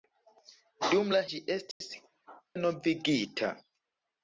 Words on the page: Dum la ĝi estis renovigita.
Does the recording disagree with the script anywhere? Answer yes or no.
no